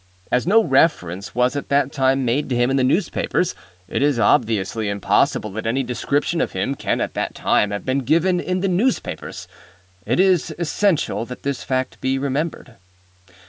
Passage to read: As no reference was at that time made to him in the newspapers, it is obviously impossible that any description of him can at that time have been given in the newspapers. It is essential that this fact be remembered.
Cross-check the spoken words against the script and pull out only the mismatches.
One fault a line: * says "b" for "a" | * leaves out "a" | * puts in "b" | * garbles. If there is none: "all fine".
all fine